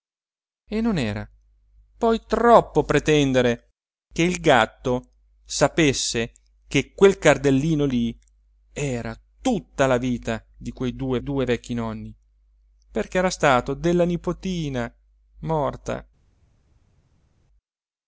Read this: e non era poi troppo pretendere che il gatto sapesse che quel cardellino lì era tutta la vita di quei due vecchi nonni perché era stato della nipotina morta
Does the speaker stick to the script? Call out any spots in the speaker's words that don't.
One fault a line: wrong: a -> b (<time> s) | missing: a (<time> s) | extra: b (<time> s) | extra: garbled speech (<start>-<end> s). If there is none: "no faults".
extra: due (11.2 s)